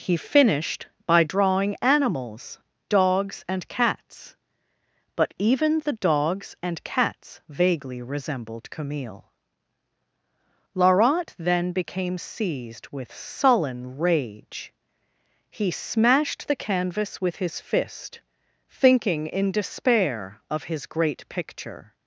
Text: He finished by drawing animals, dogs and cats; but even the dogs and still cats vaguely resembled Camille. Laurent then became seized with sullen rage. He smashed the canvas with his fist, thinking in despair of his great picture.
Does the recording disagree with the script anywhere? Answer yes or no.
yes